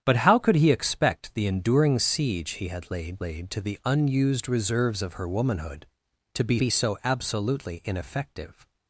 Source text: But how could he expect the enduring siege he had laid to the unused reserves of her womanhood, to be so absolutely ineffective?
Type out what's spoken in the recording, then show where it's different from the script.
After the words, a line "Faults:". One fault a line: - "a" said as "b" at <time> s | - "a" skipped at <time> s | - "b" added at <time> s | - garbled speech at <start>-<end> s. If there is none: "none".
But how could he expect the enduring siege he had laid laid to the unused reserves of her womanhood, to be be so absolutely ineffective?
Faults:
- "laid" added at 3.2 s
- "be" added at 6.6 s